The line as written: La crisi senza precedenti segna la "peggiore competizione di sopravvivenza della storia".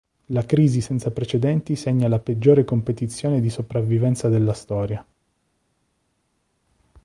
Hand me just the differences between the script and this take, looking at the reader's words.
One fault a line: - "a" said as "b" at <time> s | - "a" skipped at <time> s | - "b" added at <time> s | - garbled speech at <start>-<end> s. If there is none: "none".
none